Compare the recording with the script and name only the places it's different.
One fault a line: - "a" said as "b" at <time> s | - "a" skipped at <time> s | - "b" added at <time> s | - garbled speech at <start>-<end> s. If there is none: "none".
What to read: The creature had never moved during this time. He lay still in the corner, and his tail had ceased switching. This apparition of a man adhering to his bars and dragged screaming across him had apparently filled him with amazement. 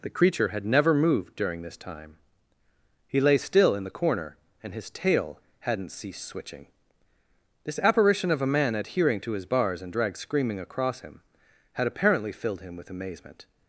- "had" said as "hadn't" at 5.6 s